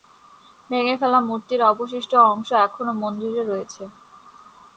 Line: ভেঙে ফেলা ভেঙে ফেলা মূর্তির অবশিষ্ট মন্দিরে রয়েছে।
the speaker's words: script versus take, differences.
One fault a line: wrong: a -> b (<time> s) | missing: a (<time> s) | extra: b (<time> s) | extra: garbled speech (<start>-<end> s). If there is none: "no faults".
wrong: ভেঙে ফেলা মূর্তির অবশিষ্ট -> মূর্তির অবশিষ্ট অংশ এখনও (1.3 s)